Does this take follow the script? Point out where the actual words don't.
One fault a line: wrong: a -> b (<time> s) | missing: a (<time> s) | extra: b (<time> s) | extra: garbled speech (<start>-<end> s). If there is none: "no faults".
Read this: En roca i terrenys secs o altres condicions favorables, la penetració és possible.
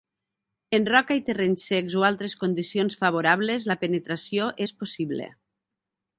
no faults